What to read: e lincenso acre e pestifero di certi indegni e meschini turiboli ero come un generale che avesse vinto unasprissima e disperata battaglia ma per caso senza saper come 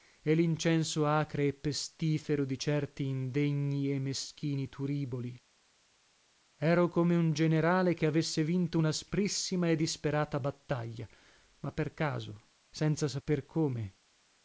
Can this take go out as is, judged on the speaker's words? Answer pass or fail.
pass